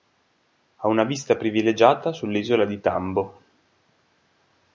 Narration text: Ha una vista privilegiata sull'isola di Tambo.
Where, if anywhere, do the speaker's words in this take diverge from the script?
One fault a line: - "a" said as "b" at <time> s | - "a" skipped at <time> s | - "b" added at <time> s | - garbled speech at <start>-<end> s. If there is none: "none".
none